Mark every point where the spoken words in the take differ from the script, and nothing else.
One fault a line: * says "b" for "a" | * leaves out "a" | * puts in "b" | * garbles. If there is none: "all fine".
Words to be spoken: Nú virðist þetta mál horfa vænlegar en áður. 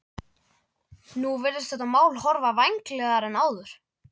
all fine